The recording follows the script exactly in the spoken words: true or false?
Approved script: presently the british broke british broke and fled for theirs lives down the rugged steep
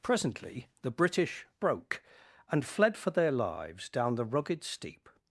false